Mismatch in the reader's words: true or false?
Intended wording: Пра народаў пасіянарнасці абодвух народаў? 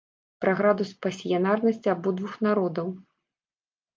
true